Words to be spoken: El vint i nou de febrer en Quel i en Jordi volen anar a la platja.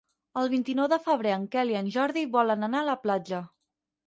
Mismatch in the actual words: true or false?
false